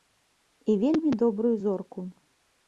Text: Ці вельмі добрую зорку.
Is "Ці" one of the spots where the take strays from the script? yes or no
yes